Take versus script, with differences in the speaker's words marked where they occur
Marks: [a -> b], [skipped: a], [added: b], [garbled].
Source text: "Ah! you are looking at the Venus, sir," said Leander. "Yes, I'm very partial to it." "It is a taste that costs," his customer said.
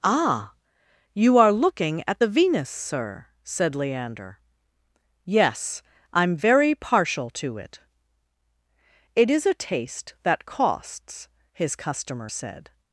"Ah! you are looking at the Venus, sir," said Leander. "Yes, I'm very partial to it." "It is a taste that costs," his customer said.